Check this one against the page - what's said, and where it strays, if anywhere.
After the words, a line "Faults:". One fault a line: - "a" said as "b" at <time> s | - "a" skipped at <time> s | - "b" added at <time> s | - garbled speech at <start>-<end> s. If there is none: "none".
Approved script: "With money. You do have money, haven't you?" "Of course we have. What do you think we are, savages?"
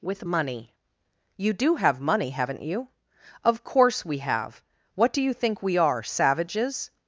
"With money. You do have money, haven't you?" "Of course we have. What do you think we are, savages?"
Faults:
none